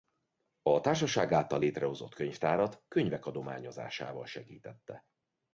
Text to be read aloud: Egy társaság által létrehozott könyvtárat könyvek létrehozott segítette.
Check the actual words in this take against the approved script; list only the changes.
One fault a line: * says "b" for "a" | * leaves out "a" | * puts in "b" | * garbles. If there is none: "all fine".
* says "A" for "Egy"
* says "adományozásával" for "létrehozott"